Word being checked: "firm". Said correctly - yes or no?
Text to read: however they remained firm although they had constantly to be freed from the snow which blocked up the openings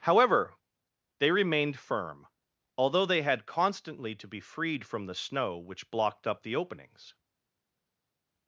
yes